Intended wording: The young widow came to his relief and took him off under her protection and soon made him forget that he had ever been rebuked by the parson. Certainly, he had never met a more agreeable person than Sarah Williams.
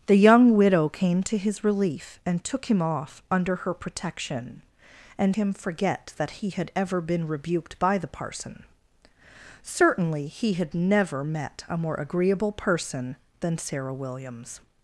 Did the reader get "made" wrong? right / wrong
wrong